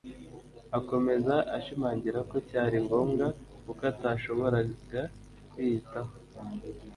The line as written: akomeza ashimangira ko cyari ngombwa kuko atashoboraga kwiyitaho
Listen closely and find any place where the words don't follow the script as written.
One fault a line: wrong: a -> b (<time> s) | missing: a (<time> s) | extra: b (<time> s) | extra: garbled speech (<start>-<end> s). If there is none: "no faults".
no faults